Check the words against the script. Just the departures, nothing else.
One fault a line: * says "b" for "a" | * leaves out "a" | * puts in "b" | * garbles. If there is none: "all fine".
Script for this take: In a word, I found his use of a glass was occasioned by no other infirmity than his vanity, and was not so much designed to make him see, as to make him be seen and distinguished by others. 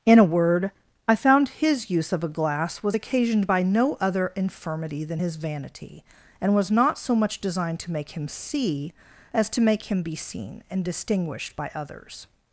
all fine